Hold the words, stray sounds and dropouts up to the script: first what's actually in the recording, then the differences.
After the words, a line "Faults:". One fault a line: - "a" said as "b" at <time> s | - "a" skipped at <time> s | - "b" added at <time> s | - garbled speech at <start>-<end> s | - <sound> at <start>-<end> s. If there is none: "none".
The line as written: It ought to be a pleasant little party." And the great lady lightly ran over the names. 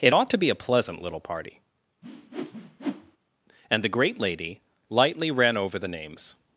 It ought to be a pleasant little party." And the great lady lightly ran over the names.
Faults:
- whoosh at 2.0-3.2 s